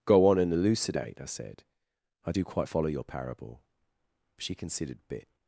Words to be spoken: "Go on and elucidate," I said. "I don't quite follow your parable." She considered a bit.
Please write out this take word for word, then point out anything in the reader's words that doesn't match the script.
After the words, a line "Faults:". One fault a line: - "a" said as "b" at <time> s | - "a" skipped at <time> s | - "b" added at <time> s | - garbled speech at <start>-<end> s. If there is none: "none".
"Go on and elucidate," I said. "I do quite follow your parable." She considered bit.
Faults:
- "don't" said as "do" at 2.3 s
- "a" skipped at 5.1 s